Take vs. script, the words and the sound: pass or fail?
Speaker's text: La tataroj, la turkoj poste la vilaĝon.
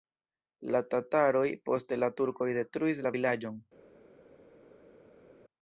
fail